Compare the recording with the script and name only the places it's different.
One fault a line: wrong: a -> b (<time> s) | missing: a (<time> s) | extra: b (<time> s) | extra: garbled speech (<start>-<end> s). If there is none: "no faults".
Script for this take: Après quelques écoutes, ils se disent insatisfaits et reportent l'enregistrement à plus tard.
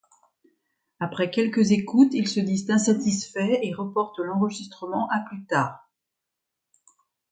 no faults